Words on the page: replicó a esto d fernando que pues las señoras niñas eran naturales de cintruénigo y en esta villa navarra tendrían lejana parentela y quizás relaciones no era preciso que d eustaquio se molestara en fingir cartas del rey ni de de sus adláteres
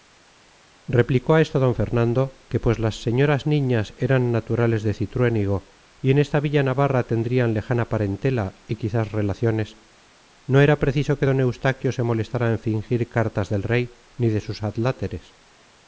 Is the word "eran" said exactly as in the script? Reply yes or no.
yes